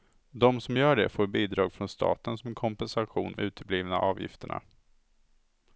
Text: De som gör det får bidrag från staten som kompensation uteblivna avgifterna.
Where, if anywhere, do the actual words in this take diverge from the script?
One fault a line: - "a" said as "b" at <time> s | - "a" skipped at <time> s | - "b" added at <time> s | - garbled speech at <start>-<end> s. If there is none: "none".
none